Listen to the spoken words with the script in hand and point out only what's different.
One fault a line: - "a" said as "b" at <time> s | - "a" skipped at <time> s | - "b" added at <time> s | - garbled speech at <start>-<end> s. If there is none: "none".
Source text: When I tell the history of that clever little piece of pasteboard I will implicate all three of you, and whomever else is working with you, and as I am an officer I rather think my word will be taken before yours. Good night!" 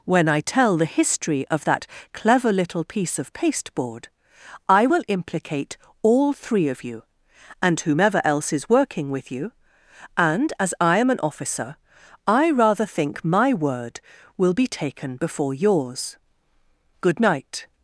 none